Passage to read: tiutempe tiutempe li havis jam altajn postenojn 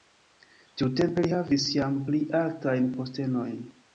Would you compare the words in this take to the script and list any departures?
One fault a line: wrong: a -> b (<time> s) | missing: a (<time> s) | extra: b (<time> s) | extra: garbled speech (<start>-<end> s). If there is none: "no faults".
missing: tiutempe (1.2 s)
extra: pli (2.1 s)